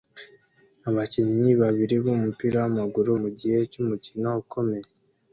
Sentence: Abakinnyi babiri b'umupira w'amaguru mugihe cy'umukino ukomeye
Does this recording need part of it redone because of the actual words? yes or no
no